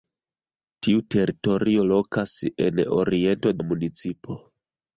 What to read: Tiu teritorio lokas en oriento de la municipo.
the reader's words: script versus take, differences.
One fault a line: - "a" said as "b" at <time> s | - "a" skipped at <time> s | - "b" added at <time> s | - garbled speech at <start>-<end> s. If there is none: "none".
- "de" skipped at 3.6 s